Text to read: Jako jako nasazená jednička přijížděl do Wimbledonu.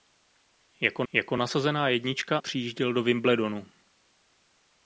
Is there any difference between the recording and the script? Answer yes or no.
no